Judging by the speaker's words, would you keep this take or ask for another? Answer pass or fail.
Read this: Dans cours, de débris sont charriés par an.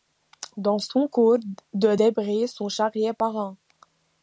fail